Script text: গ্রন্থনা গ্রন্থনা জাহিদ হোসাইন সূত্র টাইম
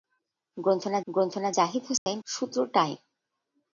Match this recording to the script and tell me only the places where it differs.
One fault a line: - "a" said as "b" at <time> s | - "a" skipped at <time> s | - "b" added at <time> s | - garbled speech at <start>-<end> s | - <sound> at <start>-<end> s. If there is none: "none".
- dropout at 2.0-2.1 s